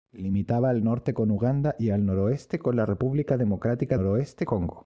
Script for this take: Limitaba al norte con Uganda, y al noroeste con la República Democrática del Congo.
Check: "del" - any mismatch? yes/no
yes